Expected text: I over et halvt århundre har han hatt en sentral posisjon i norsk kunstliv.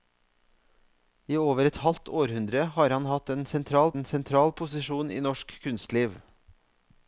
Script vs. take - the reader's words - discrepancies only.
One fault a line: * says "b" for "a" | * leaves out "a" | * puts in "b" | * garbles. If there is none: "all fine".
* puts in "en sentral"